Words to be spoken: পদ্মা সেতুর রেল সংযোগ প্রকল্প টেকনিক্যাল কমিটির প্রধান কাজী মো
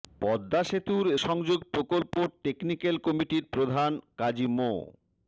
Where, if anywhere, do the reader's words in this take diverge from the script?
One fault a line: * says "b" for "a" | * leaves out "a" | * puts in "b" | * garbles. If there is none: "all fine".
* leaves out "রেল"